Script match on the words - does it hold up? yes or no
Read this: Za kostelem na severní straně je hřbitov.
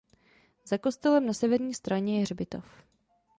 yes